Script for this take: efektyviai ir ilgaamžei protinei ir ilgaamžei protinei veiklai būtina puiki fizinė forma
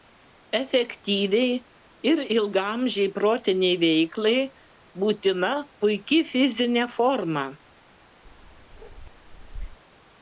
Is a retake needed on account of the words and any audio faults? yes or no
yes